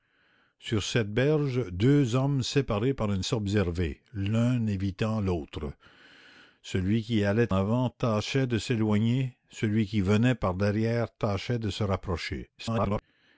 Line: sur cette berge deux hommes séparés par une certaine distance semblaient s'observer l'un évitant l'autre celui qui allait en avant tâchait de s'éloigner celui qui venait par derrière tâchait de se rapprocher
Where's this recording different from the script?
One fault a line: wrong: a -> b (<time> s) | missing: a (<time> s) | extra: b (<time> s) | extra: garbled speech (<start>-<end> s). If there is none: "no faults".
missing: certaine distance semblaient (3.2 s)
missing: en (7.5 s)
extra: garbled speech (12.6-13.0 s)